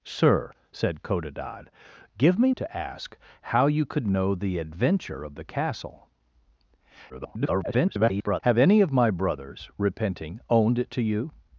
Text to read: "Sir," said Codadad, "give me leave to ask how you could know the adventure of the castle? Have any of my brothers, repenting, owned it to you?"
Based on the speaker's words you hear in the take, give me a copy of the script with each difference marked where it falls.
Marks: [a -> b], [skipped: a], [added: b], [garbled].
"Sir," said Codadad, "give me [skipped: leave] to ask how you could know the adventure of the castle? [garbled] Have any of my brothers, repenting, owned it to you?"